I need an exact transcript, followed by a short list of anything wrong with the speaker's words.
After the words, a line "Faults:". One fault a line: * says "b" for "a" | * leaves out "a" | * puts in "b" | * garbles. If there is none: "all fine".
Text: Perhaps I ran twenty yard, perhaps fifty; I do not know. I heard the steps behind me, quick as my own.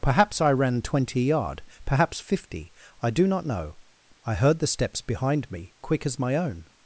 Perhaps I ran twenty yard, perhaps fifty; I do not know. I heard the steps behind me, quick as my own.
Faults:
all fine